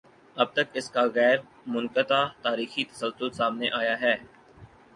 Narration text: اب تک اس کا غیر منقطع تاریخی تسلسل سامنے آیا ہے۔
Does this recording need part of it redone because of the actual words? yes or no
no